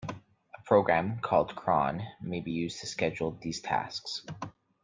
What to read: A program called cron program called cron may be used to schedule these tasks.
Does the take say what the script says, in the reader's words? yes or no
no